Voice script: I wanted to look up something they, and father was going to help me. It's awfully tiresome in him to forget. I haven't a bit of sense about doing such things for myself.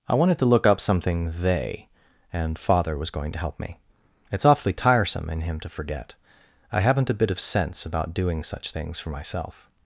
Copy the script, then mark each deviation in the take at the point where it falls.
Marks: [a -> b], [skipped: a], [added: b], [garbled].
I wanted to look up something they, and father was going to help me. It's awfully tiresome in him to forget. I haven't a bit of sense about doing such things for myself.